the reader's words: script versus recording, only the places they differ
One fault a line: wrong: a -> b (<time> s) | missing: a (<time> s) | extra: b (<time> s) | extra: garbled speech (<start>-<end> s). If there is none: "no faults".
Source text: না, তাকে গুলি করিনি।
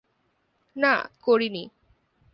missing: তাকে গুলি (0.9 s)